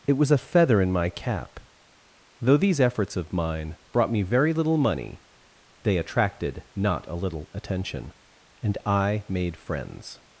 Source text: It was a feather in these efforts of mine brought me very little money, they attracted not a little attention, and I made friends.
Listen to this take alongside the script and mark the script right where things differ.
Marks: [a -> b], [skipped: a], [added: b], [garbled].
It was a feather in [added: my cap Though] these efforts of mine brought me very little money, they attracted not a little attention, and I made friends.